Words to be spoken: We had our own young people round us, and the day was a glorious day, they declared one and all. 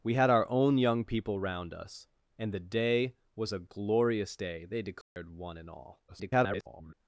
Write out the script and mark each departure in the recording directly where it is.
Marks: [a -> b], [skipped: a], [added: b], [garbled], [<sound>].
We had our own young people round us, and the day was a glorious day, they declared [dropout] one and all. [garbled]